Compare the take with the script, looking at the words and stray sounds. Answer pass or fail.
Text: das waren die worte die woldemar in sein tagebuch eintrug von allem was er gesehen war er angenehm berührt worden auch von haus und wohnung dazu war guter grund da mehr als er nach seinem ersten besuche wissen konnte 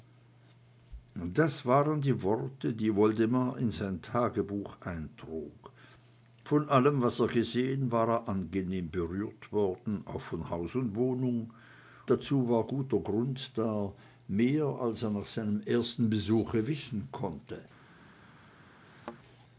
fail